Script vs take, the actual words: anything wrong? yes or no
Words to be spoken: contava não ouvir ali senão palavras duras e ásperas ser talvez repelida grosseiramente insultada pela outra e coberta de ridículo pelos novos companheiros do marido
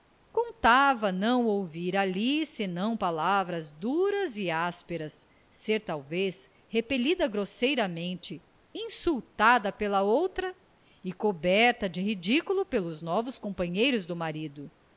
no